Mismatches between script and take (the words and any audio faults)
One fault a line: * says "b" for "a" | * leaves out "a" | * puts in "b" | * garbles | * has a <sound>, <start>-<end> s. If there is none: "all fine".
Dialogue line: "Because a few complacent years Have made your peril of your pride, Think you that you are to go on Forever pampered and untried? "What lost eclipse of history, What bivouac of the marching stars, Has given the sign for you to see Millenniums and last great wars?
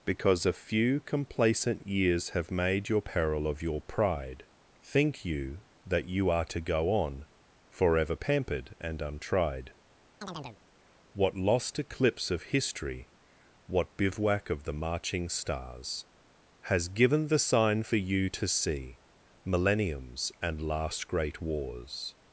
* has a chirp, 10.2-10.6 s